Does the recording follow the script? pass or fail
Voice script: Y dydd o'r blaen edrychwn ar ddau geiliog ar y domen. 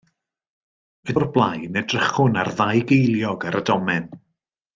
fail